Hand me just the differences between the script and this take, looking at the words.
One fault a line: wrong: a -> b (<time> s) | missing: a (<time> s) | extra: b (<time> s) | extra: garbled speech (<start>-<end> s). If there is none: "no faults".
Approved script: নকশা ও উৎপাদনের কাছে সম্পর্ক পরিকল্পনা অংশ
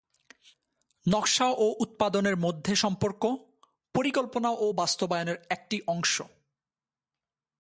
wrong: কাছে -> মধ্যে (2.4 s)
extra: ও বাস্তবায়নের একটি (4.5 s)